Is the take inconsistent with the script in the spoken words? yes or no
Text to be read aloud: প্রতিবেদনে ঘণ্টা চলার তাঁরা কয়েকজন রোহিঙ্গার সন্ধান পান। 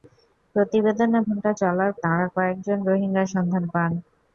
no